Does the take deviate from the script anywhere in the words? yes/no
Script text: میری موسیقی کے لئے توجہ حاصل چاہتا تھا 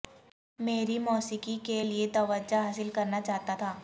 yes